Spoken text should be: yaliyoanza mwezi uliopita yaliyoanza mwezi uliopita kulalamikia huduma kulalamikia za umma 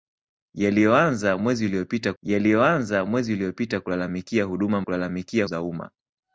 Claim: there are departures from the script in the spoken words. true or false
false